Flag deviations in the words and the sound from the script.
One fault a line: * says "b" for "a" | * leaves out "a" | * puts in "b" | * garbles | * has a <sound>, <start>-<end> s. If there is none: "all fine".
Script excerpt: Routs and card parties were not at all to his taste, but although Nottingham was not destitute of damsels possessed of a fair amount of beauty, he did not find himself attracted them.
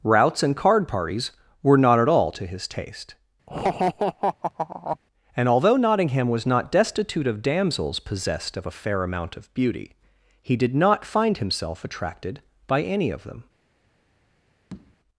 * has a laugh, 3.5-5.0 s
* says "and" for "but"
* puts in "by any of"
* has a tap, 14.7-15.0 s